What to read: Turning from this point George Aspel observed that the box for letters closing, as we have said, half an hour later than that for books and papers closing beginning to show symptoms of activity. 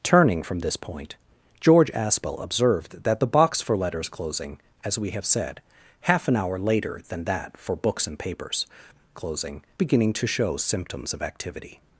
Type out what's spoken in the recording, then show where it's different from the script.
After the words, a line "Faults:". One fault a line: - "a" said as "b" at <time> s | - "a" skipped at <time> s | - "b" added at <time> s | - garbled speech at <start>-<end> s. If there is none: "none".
Turning from this point George Aspel observed that the box for letters closing, as we have said, half an hour later than that for books and papers closing beginning to show symptoms of activity.
Faults:
none